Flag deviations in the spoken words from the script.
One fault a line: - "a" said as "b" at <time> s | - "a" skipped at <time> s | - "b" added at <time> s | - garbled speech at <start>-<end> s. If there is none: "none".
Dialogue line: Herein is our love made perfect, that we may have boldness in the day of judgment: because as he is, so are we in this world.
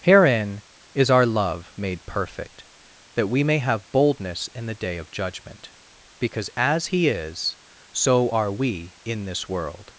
none